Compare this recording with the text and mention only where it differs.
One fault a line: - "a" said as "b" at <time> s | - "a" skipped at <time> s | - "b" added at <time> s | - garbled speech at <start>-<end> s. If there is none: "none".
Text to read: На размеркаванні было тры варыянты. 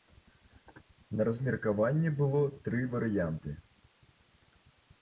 none